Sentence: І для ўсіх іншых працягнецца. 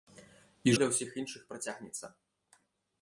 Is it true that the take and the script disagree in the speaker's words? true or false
false